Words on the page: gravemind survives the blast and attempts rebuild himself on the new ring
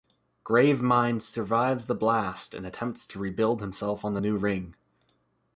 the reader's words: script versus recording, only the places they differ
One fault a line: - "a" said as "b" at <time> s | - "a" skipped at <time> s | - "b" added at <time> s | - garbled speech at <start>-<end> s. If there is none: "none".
- "to" added at 3.0 s